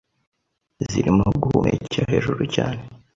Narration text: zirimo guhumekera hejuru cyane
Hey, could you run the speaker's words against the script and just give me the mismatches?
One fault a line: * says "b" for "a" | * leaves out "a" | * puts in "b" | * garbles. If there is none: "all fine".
all fine